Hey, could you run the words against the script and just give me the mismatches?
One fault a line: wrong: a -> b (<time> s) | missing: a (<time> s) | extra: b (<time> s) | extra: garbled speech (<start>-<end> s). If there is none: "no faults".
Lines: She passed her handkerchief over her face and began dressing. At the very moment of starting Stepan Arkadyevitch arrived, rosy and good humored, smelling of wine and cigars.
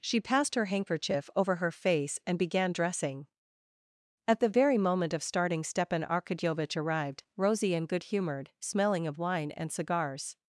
no faults